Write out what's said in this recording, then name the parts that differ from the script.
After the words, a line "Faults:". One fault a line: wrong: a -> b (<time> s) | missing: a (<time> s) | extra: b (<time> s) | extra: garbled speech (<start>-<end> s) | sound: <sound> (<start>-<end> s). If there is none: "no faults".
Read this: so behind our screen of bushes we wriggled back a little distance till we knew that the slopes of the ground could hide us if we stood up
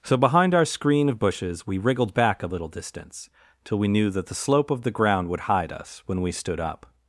so behind our screen of bushes we wriggled back a little distance till we knew that the slope of the ground would hide us when we stood up
Faults:
wrong: slopes -> slope (4.4 s)
wrong: could -> would (5.3 s)
wrong: if -> when (6.1 s)